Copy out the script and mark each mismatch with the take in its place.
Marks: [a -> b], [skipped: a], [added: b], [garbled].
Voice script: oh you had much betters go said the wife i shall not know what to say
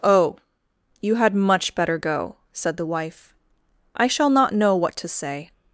oh you had much [betters -> better] go said the wife i shall not know what to say